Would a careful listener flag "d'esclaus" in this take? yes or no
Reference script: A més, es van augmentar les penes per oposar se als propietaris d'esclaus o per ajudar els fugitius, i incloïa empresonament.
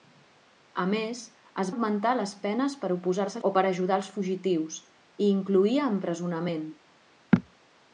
yes